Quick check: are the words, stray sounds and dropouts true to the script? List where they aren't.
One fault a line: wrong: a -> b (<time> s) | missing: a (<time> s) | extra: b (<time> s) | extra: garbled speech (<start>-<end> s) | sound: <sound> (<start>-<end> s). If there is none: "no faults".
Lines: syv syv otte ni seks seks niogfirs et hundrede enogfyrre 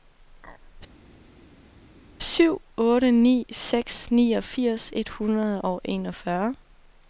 missing: syv (2.5 s)
missing: seks (4.1 s)
extra: og (5.6 s)